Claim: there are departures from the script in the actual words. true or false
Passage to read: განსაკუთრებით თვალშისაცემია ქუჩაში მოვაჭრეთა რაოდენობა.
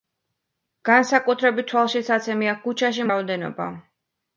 true